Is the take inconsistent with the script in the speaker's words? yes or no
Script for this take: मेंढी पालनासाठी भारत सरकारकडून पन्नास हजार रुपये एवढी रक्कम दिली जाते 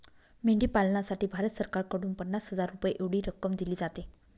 no